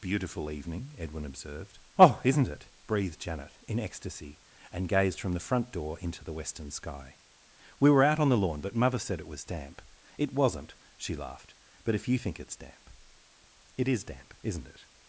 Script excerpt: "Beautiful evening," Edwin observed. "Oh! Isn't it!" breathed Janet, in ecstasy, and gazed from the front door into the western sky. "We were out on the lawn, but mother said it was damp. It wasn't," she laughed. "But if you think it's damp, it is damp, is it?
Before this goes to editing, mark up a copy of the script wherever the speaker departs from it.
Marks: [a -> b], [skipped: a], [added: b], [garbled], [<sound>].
"Beautiful evening," Edwin observed. "Oh! Isn't it!" breathed Janet, in ecstasy, and gazed from the front door into the western sky. "We were out on the lawn, but mother said it was damp. It wasn't," she laughed. "But if you think it's damp, it is damp, [is -> isn't] it?